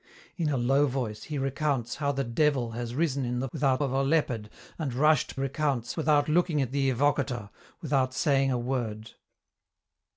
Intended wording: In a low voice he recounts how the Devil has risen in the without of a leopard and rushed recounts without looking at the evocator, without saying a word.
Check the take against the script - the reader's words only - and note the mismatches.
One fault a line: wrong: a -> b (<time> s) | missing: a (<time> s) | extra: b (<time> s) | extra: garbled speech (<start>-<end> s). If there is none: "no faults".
no faults